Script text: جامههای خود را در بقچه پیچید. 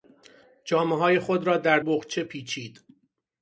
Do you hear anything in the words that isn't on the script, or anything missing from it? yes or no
no